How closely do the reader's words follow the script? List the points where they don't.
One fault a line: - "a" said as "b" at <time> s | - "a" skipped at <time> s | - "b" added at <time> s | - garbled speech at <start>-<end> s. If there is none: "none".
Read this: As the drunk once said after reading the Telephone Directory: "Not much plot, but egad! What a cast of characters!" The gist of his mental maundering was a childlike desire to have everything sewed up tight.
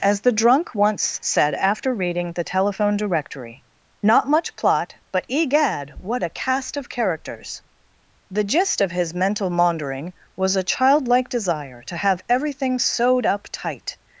none